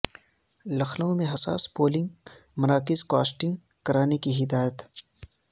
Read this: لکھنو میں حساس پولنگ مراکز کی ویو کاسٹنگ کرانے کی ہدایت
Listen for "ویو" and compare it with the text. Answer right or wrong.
wrong